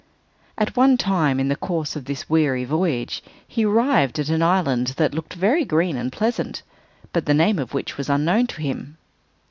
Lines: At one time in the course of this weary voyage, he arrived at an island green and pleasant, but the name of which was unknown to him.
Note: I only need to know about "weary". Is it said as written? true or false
true